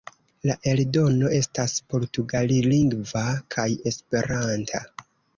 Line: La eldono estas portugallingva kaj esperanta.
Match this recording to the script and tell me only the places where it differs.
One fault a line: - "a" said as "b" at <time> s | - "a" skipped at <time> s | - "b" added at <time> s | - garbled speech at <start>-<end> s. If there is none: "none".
none